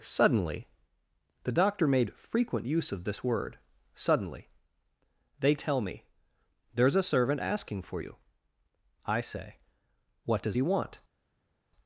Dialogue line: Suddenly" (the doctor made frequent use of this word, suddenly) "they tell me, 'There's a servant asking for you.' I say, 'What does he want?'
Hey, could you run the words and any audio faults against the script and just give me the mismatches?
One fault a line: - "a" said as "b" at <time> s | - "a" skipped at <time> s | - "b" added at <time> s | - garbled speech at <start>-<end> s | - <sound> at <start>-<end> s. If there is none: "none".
none